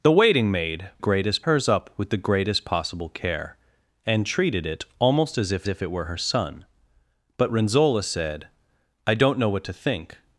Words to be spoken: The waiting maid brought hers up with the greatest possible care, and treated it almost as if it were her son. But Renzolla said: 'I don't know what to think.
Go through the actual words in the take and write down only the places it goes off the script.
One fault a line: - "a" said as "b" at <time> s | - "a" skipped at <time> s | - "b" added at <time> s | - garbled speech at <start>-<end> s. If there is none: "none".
- "brought" said as "greatest" at 1.0 s
- "if" added at 5.7 s